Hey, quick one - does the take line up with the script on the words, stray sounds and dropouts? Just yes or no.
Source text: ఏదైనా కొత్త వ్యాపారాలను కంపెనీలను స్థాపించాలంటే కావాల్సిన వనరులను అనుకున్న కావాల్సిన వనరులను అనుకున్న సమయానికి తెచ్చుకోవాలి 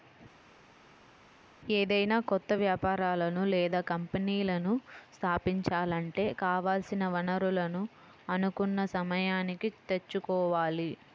no